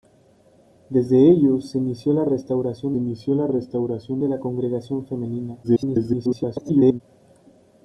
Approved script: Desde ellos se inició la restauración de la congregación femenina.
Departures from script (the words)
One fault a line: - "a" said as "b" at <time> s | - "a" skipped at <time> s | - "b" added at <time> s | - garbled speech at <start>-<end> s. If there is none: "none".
- "inició la restauración" added at 3.0 s
- garbled speech at 5.6-7.0 s